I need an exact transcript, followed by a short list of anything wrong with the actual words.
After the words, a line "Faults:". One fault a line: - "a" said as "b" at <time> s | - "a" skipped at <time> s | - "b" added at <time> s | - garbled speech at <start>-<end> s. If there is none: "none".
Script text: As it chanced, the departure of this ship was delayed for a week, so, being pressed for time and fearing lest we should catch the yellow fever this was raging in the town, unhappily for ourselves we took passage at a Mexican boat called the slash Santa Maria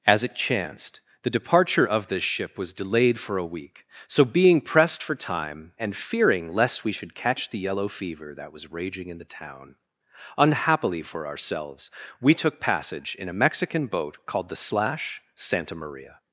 As it chanced, the departure of this ship was delayed for a week, so, being pressed for time and fearing lest we should catch the yellow fever that was raging in the town, unhappily for ourselves we took passage in a Mexican boat called the slash Santa Maria
Faults:
- "this" said as "that" at 8.3 s
- "at" said as "in" at 13.2 s